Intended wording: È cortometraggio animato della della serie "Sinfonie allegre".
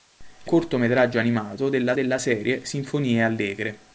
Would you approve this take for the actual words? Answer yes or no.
yes